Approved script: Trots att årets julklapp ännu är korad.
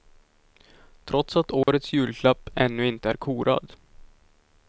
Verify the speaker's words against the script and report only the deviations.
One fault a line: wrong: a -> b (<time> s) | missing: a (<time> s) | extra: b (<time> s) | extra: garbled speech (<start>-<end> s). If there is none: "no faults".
extra: inte (2.9 s)